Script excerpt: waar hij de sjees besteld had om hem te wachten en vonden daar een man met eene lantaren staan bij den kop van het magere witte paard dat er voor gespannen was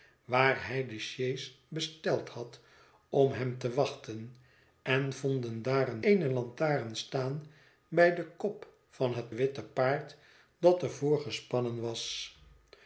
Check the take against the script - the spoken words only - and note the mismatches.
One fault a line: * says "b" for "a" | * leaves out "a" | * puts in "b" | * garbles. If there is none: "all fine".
* leaves out "man met"
* leaves out "magere"